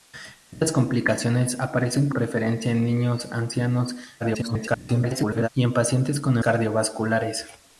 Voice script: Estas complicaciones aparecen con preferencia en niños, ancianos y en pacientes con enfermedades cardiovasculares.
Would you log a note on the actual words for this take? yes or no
yes